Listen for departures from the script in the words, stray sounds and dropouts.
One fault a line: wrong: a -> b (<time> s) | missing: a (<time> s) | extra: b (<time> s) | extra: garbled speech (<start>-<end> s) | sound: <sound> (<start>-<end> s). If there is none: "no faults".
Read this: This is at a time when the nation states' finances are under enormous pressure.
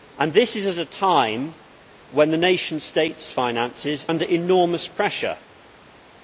missing: are (4.1 s)